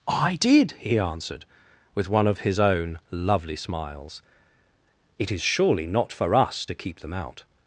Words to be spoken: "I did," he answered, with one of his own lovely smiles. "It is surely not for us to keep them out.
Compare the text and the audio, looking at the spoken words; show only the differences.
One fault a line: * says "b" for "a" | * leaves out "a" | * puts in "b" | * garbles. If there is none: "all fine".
all fine